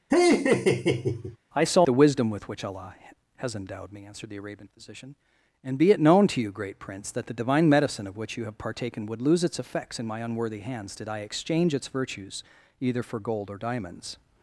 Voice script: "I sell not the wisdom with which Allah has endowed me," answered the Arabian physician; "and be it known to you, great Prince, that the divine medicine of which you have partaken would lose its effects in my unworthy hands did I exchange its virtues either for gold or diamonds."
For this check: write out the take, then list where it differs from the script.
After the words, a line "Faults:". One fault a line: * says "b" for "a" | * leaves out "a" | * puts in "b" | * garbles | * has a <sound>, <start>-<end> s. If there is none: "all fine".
"I sell the wisdom with which Allah has endowed me," answered the Arabian physician; "and be it known to you, great Prince, that the divine medicine of which you have partaken would lose its effects in my unworthy hands did I exchange its virtues either for gold or diamonds."
Faults:
* has a laugh, 0.1-1.4 s
* leaves out "not"